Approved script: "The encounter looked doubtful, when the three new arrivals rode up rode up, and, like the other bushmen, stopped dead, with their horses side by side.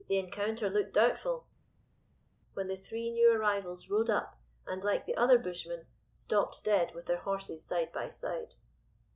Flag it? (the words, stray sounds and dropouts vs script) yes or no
yes